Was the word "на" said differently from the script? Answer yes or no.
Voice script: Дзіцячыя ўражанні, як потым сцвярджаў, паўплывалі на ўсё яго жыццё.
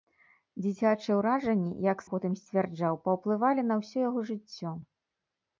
no